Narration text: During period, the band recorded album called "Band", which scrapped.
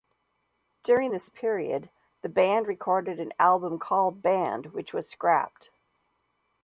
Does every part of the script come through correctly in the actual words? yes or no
no